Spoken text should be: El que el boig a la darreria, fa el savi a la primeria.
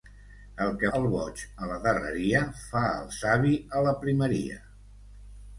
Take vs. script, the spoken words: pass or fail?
pass